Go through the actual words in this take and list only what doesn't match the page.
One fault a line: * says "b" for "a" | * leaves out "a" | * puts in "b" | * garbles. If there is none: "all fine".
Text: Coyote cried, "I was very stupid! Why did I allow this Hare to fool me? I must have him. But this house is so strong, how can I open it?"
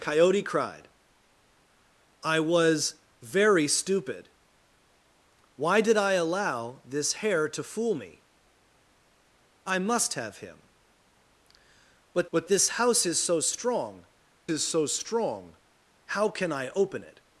* puts in "but"
* puts in "is so strong"